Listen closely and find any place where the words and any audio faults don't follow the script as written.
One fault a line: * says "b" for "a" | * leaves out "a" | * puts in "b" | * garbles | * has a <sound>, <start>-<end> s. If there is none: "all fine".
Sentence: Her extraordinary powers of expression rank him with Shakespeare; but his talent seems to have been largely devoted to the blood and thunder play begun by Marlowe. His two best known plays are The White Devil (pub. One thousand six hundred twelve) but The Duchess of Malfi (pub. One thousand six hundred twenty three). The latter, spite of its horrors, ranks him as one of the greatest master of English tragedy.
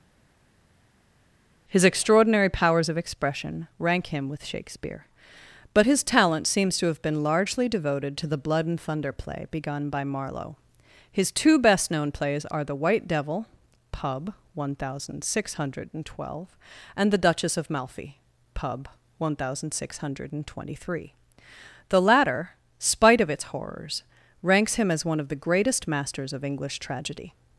* says "His" for "Her"
* says "and" for "but"
* says "masters" for "master"